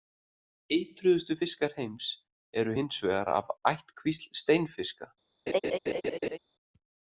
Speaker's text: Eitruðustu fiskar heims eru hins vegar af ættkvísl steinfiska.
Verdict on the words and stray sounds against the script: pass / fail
fail